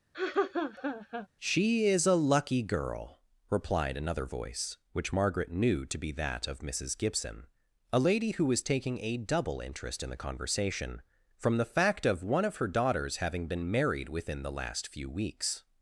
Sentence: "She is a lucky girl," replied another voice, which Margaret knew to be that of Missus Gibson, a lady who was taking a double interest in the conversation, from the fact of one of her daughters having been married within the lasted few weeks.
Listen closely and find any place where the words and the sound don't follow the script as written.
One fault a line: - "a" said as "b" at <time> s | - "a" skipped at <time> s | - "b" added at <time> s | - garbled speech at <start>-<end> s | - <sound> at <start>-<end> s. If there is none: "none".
- laugh at 0.1-1.3 s
- "lasted" said as "last" at 14.5 s